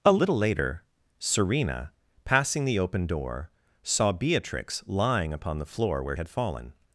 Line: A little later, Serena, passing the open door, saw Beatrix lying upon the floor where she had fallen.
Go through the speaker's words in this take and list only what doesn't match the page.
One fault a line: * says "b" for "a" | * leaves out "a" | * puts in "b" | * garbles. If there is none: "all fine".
* leaves out "she"